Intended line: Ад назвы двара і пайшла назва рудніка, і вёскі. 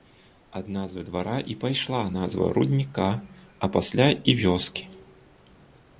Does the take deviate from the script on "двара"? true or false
false